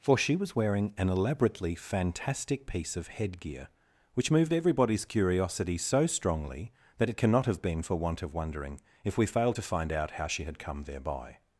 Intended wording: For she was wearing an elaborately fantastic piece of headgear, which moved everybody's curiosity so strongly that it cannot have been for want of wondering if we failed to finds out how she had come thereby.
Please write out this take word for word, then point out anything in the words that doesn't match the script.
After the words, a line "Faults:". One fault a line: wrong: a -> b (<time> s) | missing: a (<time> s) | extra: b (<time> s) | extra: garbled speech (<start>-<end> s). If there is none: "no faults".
For she was wearing an elaborately fantastic piece of headgear, which moved everybody's curiosity so strongly that it cannot have been for want of wondering if we failed to find out how she had come thereby.
Faults:
wrong: finds -> find (9.6 s)